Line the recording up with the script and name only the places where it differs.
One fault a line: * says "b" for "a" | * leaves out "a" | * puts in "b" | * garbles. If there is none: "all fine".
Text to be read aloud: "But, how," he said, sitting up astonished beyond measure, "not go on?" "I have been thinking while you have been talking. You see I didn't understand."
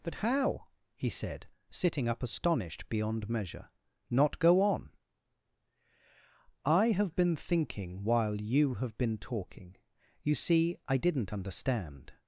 all fine